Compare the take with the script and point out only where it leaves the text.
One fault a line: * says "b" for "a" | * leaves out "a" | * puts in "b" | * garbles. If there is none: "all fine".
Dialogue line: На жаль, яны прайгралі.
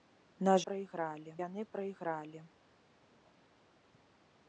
* says "прайгралі" for "жаль"